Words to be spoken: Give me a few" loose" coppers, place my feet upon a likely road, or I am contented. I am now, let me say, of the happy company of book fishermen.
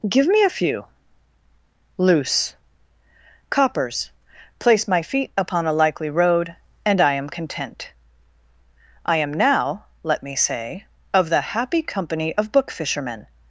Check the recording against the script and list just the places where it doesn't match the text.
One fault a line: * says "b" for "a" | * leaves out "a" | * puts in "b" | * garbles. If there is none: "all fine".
* says "and" for "or"
* says "content" for "contented"